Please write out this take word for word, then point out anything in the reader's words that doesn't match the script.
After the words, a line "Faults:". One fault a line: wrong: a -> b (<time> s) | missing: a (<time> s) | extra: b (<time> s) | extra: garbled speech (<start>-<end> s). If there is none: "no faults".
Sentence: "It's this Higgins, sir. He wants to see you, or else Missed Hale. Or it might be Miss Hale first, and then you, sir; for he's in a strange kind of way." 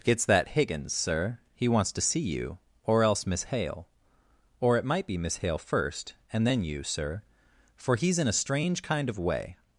"It's that Higgins, sir. He wants to see you, or else Miss Hale. Or it might be Miss Hale first, and then you, sir; for he's in a strange kind of way."
Faults:
wrong: this -> that (0.2 s)
wrong: Missed -> Miss (3.3 s)